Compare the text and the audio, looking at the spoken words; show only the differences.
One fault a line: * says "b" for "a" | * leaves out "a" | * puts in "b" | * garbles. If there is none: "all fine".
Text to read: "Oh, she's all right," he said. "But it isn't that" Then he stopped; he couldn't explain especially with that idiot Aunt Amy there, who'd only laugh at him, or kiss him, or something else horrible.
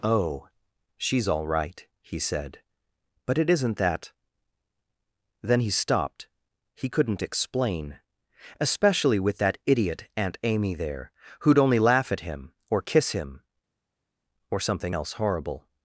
all fine